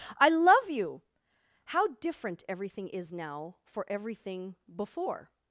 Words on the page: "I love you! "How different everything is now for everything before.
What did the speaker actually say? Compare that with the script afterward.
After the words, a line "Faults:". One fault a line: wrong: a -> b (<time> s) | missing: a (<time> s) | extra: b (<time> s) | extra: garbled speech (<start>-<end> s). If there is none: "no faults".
"I love you! "How different everything is now for everything before.
Faults:
no faults